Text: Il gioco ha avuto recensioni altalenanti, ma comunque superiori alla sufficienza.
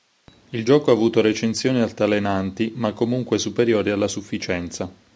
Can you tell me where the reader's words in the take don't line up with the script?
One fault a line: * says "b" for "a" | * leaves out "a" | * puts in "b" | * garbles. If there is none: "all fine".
all fine